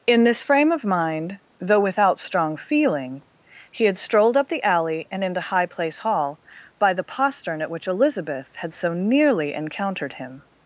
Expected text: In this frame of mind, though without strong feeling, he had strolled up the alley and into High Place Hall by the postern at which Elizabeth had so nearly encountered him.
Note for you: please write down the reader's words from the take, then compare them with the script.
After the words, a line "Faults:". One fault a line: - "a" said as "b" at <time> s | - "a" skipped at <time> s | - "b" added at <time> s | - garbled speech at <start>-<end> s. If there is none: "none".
In this frame of mind, though without strong feeling, he had strolled up the alley and into High Place Hall by the postern at which Elizabeth had so nearly encountered him.
Faults:
none